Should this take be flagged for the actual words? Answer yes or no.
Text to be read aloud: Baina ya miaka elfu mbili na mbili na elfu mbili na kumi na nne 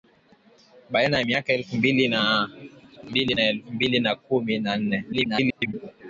yes